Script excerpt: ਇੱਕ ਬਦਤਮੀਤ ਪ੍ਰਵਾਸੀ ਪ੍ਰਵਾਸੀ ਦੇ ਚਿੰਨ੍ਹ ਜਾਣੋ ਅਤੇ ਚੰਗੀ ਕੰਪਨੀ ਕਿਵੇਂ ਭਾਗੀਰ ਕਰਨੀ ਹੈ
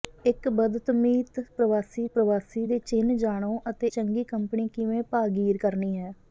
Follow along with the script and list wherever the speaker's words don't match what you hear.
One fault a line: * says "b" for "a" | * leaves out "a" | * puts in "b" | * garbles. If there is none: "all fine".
all fine